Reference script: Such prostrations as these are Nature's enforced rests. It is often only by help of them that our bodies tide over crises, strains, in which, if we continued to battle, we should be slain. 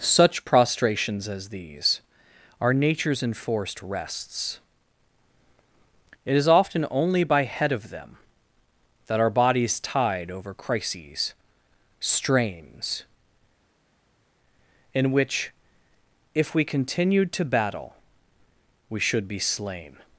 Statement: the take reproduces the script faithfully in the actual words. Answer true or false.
false